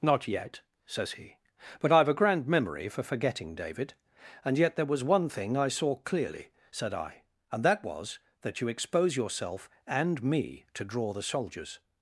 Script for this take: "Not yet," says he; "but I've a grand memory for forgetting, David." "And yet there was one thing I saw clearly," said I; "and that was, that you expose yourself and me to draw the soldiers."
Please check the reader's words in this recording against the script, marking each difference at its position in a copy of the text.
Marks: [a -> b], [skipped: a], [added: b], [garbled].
"Not yet," says he; "but I've a grand memory for forgetting, David." "And yet there was one thing I saw clearly," said I; "and that was, that you expose yourself and me to draw the soldiers."